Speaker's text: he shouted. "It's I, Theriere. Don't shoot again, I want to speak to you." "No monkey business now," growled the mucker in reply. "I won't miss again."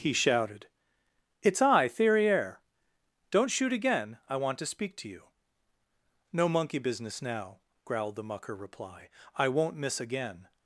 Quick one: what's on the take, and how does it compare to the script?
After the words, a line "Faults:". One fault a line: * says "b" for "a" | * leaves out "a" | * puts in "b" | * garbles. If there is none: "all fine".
he shouted. "It's I, Theriere. Don't shoot again, I want to speak to you." "No monkey business now," growled the mucker reply. "I won't miss again."
Faults:
* leaves out "in"